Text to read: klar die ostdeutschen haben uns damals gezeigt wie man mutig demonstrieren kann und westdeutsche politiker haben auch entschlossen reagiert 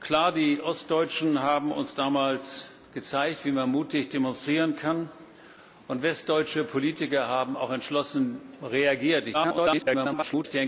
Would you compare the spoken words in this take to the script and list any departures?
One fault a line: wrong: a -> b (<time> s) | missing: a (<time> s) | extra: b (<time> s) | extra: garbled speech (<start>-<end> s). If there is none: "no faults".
extra: garbled speech (9.3-10.5 s)